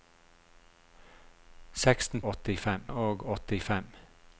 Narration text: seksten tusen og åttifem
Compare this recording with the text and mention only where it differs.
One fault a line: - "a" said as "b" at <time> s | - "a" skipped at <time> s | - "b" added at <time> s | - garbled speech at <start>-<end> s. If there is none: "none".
- "tusen" said as "åttifem" at 2.3 s